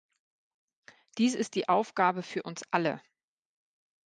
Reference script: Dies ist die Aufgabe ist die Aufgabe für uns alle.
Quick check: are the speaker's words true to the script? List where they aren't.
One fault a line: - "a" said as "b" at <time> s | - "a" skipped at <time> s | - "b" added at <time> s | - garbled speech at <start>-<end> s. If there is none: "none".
- "ist die Aufgabe" skipped at 2.2 s